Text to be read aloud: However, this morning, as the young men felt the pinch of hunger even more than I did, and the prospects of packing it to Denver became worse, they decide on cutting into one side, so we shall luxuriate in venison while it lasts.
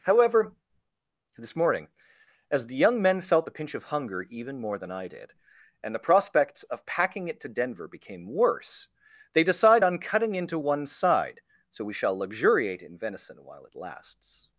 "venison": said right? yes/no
yes